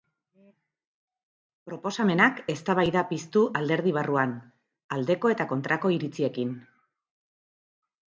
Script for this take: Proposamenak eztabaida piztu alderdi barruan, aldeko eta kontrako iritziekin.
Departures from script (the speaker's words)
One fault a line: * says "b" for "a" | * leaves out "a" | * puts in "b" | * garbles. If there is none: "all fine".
all fine